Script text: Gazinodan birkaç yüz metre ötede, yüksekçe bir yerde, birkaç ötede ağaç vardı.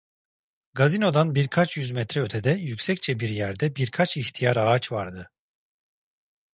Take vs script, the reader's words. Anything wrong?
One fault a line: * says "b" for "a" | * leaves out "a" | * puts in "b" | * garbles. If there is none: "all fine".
* says "ihtiyar" for "ötede"